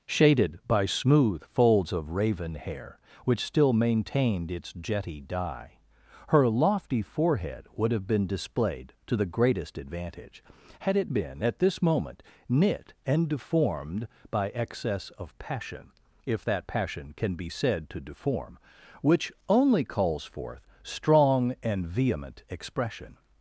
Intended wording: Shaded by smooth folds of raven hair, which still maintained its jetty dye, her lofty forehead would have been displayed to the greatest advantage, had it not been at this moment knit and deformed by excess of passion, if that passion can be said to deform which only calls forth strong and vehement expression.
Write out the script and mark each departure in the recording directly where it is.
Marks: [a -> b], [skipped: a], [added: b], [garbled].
Shaded by smooth folds of raven hair, which still maintained its jetty dye, her lofty forehead would have been displayed to the greatest advantage, had it [skipped: not] been at this moment knit and deformed by excess of passion, if that passion can be said to deform which only calls forth strong and vehement expression.